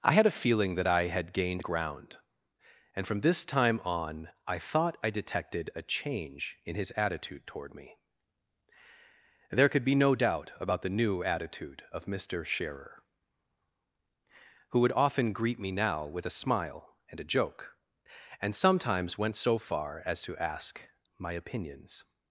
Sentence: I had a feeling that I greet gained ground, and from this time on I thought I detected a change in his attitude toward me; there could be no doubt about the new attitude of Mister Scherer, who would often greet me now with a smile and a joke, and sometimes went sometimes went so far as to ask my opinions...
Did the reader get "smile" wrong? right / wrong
right